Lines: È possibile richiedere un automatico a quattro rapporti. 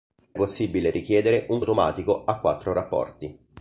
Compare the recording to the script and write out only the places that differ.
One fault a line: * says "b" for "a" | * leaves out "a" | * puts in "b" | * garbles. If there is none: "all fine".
all fine